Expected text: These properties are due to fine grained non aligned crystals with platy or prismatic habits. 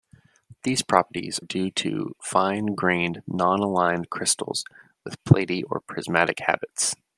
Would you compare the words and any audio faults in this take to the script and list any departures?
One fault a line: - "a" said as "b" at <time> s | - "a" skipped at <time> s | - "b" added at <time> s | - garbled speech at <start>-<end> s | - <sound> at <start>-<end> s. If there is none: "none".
- "are" skipped at 1.4 s